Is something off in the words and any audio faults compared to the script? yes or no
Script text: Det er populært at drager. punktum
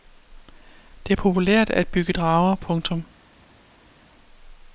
yes